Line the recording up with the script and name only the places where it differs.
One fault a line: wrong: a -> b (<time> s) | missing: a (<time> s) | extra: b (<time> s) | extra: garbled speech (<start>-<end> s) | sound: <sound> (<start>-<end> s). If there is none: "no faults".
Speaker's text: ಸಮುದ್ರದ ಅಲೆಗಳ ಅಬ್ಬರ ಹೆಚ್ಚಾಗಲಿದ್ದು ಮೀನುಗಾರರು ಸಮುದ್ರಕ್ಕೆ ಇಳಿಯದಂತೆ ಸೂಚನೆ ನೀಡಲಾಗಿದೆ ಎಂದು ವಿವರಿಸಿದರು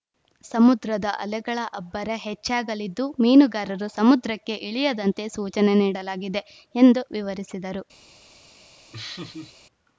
sound: laugh (8.9-9.6 s)